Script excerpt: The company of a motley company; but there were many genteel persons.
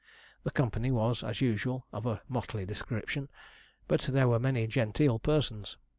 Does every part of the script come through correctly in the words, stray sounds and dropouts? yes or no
no